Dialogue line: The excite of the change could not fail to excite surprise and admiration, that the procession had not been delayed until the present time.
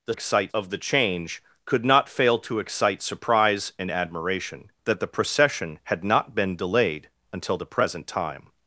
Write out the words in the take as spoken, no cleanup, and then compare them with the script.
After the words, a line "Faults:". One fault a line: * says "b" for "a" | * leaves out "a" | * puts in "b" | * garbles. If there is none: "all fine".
The excite of the change could not fail to excite surprise and admiration, that the procession had not been delayed until the present time.
Faults:
all fine